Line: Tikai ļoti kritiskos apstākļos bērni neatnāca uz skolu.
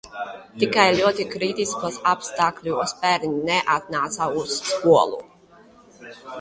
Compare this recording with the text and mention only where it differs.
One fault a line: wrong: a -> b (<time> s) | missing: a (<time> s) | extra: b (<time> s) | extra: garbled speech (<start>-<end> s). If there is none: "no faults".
no faults